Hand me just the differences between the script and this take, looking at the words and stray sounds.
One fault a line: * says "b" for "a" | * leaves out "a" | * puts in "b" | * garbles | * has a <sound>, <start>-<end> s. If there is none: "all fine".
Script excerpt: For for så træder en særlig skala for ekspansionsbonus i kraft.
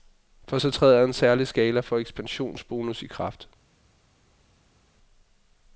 * leaves out "for"